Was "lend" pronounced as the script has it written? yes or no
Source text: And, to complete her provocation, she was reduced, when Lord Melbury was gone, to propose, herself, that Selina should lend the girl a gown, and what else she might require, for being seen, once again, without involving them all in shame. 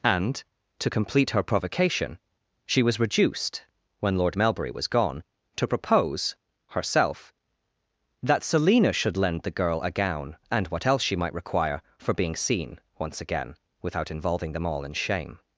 yes